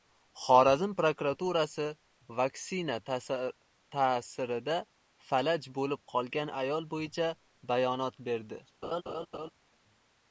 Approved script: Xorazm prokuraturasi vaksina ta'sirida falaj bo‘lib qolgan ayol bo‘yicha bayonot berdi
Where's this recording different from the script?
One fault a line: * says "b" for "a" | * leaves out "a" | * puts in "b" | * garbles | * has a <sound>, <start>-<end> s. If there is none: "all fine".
* has a laugh, 8.8-9.5 s